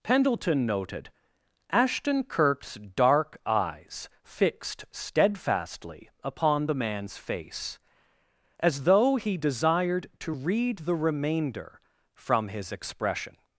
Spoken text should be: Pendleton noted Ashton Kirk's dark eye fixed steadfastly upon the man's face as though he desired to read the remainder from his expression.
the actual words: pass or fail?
fail